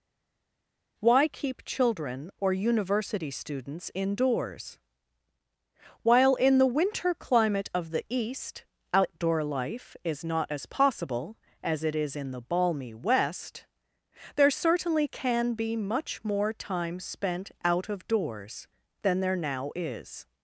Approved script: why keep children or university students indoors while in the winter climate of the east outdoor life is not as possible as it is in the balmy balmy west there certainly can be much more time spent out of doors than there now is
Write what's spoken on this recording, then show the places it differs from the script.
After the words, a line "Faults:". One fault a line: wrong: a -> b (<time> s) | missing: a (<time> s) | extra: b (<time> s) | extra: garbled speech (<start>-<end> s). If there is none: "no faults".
why keep children or university students indoors while in the winter climate of the east outdoor life is not as possible as it is in the balmy west there certainly can be much more time spent out of doors than there now is
Faults:
missing: balmy (12.9 s)